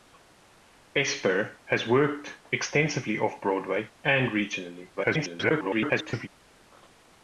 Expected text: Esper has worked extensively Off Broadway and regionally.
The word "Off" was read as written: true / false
true